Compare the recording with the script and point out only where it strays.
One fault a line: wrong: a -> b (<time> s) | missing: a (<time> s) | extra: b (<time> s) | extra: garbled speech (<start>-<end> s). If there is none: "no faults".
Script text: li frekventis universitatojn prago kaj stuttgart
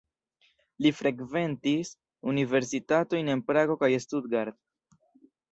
extra: en (3.4 s)